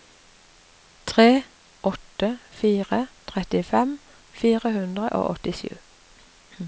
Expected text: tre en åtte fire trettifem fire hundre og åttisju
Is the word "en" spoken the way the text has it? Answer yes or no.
no